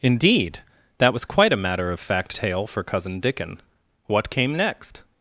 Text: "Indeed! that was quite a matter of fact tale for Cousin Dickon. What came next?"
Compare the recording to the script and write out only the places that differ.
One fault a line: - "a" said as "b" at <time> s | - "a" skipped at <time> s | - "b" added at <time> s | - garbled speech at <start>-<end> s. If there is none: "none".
none